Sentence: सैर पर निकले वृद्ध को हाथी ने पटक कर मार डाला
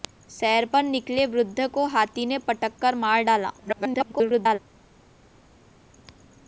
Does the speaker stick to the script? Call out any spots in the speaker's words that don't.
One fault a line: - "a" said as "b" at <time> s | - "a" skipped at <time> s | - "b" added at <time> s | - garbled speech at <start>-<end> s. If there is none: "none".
- garbled speech at 3.6-4.6 s